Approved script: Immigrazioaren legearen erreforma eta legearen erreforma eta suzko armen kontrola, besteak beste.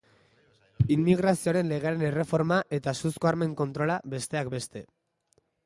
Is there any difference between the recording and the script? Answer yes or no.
yes